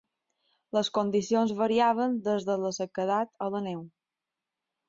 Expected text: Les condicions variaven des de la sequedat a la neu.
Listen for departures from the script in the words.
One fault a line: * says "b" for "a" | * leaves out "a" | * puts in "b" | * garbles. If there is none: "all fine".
all fine